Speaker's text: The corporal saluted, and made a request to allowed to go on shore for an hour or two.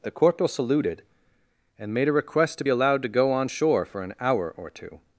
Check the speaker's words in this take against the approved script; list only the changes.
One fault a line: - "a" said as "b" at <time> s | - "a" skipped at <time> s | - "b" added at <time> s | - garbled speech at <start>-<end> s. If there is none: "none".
none